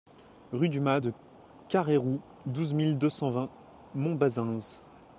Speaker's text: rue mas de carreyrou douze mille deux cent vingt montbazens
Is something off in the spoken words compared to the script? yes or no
yes